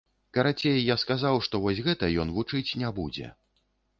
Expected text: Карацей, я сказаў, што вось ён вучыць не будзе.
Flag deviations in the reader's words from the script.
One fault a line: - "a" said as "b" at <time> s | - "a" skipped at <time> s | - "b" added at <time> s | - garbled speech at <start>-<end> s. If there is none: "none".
- "гэта" added at 1.9 s